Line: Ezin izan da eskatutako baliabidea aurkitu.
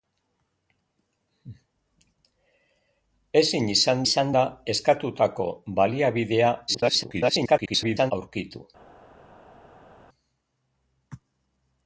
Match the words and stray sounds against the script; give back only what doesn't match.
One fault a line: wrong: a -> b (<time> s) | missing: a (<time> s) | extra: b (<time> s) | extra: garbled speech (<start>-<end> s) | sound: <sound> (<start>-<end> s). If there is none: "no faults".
extra: izan (4.1 s)
extra: garbled speech (6.7-8.1 s)